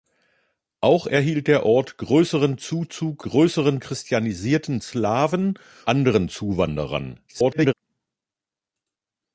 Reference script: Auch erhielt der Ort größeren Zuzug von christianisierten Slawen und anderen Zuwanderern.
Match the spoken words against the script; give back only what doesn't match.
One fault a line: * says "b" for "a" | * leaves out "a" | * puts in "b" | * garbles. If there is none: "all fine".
* says "größeren" for "von"
* leaves out "und"
* garbles